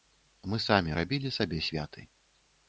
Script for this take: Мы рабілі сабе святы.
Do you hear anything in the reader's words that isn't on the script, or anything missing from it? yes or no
yes